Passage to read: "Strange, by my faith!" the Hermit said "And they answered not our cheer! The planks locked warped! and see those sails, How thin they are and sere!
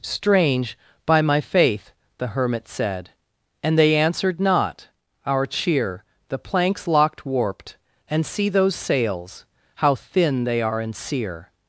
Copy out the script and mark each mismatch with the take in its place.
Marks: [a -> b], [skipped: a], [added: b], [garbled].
"Strange, by my faith!" the Hermit said "And they answered not our cheer! The planks locked warped! and see those sails, How thin they are and sere!